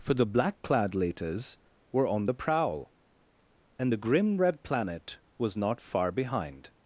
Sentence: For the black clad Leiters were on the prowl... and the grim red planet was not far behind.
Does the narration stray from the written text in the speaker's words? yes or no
no